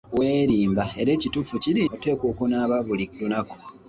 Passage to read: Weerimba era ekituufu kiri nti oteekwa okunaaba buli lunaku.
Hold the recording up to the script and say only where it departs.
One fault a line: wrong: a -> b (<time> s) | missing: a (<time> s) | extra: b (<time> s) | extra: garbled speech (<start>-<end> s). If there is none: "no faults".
missing: nti (1.8 s)